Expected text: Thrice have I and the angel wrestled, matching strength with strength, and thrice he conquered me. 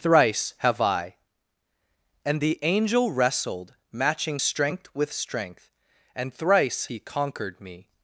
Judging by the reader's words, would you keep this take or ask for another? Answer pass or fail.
pass